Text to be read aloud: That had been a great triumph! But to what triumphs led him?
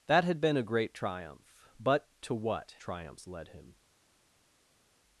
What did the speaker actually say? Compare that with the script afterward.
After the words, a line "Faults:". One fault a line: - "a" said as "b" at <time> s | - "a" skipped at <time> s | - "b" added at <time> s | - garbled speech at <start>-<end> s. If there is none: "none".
That had been a great triumph! But to what triumphs led him?
Faults:
none